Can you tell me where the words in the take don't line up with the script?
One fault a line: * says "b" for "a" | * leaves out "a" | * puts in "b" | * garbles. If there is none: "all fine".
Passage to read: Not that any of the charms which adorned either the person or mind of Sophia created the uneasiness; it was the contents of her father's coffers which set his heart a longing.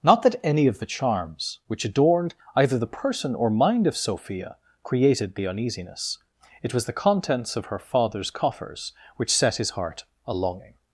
all fine